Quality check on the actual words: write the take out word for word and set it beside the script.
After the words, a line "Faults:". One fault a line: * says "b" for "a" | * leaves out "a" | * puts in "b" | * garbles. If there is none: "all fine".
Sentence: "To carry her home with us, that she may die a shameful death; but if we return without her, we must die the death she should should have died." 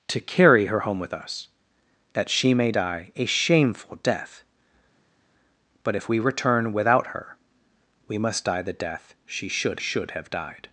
"To carry her home with us, that she may die a shameful death; but if we return without her, we must die the death she should should have died."
Faults:
all fine